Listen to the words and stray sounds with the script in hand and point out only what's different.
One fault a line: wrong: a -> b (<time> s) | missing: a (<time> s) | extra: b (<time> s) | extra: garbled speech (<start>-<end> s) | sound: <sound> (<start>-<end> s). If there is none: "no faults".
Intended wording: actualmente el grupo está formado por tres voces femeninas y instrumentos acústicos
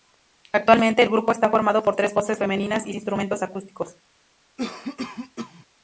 sound: cough (4.6-5.7 s)